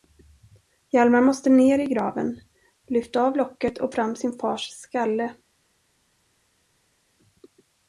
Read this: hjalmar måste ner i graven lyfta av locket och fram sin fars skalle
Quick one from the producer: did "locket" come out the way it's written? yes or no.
yes